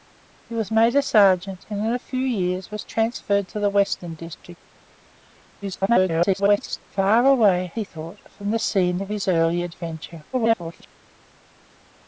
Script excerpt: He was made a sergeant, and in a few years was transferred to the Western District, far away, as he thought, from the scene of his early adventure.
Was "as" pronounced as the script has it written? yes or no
no